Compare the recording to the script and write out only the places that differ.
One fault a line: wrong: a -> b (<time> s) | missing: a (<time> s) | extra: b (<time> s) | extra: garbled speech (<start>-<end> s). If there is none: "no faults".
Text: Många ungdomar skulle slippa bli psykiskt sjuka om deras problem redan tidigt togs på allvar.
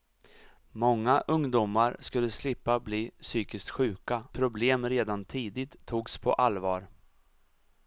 missing: om deras (4.3 s)